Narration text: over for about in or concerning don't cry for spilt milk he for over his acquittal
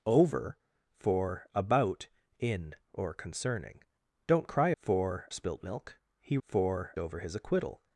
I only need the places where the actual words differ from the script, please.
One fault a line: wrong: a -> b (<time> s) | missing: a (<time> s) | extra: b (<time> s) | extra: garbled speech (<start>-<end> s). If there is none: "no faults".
no faults